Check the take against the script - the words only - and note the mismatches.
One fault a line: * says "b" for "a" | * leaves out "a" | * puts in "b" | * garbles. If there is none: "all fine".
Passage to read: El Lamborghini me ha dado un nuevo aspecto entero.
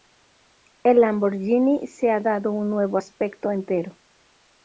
* says "se" for "me"